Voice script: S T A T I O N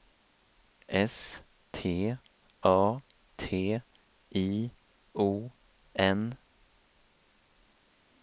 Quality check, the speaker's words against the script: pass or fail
pass